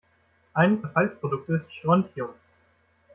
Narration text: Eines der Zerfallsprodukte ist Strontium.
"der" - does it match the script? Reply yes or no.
no